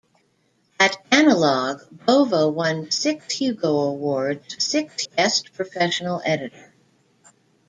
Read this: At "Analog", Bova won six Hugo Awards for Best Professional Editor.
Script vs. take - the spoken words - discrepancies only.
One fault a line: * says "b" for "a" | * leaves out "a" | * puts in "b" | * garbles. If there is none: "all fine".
* says "six" for "for"